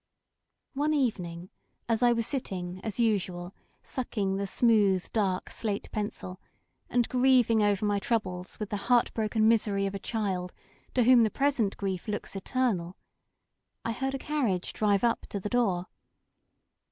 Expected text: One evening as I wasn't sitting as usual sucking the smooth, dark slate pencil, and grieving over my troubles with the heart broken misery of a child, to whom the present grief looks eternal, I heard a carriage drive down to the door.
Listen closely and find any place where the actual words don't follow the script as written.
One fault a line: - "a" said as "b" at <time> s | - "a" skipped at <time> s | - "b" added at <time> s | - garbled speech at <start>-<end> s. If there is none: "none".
- "wasn't" said as "was" at 2.1 s
- "down" said as "up" at 15.0 s